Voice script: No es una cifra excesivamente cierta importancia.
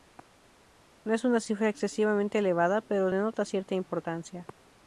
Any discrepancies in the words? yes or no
yes